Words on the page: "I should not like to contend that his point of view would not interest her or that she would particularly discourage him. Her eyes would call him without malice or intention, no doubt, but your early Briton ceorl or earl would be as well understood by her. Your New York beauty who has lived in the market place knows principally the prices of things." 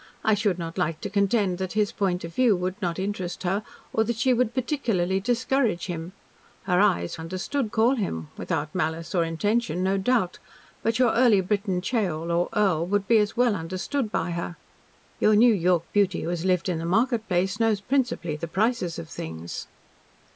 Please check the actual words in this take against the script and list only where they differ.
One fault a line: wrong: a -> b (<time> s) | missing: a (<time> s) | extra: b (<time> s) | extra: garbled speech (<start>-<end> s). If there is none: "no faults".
wrong: would -> understood (7.1 s)